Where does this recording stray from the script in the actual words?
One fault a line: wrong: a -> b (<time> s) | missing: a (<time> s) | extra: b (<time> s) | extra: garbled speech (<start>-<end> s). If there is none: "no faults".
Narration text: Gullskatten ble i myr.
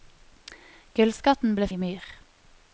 no faults